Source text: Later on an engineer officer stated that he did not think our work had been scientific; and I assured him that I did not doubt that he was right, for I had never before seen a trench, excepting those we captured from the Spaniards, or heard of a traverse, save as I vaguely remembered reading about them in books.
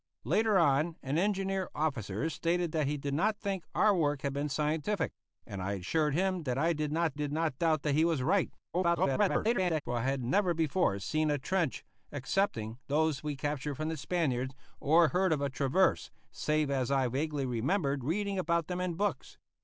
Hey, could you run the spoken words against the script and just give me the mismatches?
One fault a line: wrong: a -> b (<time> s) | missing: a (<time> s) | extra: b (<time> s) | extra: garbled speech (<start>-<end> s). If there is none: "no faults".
extra: did not (7.1 s)
extra: garbled speech (8.7-9.8 s)